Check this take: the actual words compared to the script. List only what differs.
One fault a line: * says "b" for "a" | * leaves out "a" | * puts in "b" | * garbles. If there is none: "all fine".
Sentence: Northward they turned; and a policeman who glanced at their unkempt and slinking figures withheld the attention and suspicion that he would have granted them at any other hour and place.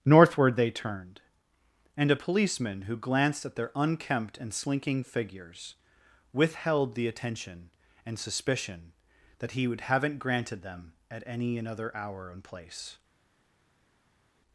* says "haven't" for "have"
* says "another" for "other"